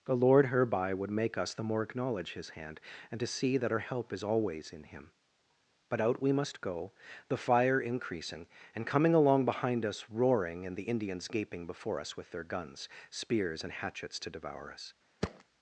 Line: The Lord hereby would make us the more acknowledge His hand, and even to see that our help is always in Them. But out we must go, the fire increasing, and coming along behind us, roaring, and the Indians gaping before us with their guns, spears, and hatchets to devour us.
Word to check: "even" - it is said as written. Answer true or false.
false